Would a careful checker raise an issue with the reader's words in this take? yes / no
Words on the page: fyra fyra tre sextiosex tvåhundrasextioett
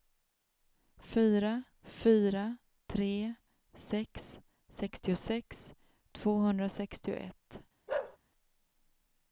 yes